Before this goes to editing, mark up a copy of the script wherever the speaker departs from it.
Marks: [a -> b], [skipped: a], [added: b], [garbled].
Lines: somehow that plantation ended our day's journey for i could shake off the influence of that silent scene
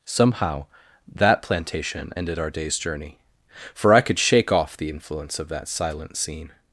somehow that plantation ended our day's journey for i could shake off the influence of that silent scene